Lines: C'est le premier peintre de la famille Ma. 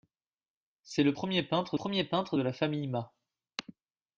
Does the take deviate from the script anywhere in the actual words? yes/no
yes